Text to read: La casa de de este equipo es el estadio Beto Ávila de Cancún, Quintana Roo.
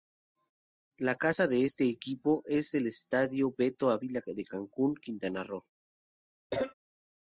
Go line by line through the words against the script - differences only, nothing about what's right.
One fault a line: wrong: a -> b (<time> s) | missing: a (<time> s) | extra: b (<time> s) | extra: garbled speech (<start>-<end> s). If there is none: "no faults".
missing: de (1.7 s)